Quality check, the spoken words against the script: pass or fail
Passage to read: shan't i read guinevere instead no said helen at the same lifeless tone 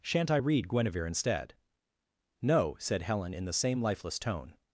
fail